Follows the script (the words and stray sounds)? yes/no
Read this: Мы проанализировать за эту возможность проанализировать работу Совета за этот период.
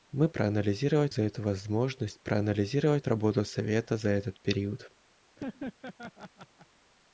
no